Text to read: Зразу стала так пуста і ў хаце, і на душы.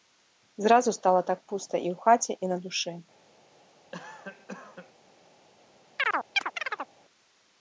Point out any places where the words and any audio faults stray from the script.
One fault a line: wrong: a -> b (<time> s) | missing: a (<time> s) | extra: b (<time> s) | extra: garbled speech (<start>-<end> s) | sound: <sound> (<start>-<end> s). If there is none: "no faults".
sound: cough (3.9-4.9 s)
sound: chirp (6.0-6.9 s)